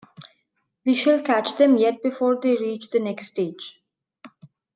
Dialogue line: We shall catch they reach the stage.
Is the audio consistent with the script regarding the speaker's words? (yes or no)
no